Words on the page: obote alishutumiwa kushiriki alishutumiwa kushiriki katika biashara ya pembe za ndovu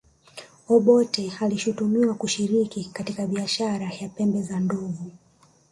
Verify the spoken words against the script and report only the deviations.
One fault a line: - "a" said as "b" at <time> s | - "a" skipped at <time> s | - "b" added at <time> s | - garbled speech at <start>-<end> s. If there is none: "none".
- "alishutumiwa kushiriki" skipped at 2.9 s